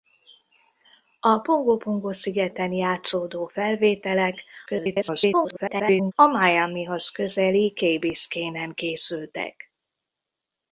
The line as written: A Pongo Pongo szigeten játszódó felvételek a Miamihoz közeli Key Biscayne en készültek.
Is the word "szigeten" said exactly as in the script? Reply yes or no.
yes